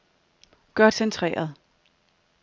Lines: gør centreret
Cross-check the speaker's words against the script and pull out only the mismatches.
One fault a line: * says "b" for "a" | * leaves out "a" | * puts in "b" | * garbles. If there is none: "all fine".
all fine